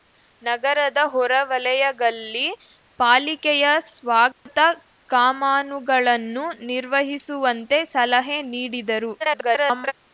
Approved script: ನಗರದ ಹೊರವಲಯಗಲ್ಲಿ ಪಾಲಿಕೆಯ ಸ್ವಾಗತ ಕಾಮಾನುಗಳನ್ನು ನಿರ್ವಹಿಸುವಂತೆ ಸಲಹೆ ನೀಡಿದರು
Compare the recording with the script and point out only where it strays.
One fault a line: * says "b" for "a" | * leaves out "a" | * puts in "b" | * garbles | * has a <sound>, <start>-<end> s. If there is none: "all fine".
* has a dropout, 4.3-4.5 s
* garbles